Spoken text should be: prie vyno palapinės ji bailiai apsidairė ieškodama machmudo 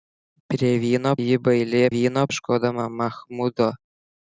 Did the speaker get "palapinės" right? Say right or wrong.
wrong